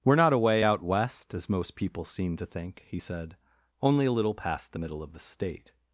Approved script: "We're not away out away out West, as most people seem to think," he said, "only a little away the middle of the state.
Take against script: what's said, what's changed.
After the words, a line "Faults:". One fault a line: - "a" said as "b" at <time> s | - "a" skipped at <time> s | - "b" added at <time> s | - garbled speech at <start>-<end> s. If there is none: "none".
"We're not away out West, as most people seem to think," he said, "only a little past the middle of the state.
Faults:
- "away out" skipped at 0.8 s
- "away" said as "past" at 4.4 s